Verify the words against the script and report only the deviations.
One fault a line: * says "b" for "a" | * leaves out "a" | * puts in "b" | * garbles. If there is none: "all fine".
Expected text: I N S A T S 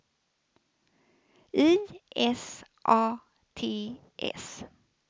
* leaves out "N"